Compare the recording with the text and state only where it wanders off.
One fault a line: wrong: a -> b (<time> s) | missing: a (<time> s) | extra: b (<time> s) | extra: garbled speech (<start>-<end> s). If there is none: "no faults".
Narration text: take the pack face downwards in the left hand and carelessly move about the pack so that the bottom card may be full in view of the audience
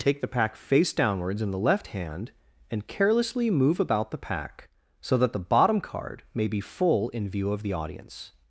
no faults